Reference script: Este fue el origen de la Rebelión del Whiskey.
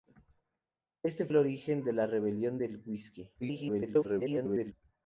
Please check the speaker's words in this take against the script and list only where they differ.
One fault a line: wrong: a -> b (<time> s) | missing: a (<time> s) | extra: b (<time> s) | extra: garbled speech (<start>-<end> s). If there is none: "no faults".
missing: fue (1.3 s)
extra: garbled speech (3.4-4.7 s)